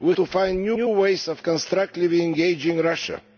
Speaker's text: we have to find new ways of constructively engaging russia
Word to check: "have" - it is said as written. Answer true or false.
false